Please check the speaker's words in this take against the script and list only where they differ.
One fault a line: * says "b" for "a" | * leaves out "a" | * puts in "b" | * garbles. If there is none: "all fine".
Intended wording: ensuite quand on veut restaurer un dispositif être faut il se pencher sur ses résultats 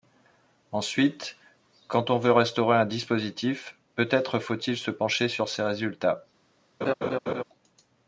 * puts in "peut"